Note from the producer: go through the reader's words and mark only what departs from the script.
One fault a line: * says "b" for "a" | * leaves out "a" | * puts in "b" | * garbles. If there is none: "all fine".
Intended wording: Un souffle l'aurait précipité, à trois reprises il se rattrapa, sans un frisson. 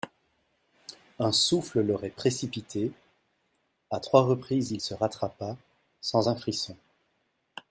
all fine